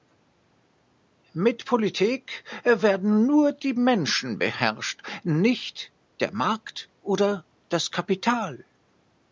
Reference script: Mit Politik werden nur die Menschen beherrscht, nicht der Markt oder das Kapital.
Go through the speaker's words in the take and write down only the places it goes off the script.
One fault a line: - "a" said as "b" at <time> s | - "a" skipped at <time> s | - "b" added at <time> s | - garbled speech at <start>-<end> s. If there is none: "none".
none